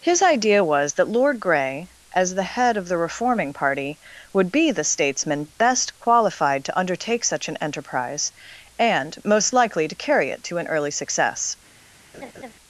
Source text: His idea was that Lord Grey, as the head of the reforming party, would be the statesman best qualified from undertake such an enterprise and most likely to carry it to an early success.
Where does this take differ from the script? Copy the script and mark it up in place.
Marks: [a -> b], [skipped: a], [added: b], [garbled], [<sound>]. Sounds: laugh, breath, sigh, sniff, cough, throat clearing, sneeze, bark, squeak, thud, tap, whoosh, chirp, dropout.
His idea was that Lord Grey, as the head of the reforming party, would be the statesman best qualified [from -> to] undertake such an enterprise and most likely to carry it to an early success. [laugh]